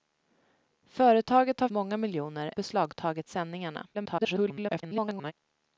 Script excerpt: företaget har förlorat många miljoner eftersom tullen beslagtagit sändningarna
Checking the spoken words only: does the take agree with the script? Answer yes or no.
no